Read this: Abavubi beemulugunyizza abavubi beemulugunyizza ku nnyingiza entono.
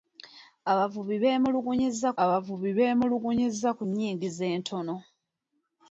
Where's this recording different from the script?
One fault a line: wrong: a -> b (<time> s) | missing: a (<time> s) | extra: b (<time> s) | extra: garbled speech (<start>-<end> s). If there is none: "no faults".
no faults